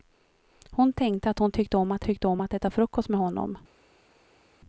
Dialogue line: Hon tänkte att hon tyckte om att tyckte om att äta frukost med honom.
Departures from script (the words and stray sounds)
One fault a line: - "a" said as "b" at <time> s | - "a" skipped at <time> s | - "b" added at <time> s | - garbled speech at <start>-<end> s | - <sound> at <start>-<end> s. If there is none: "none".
none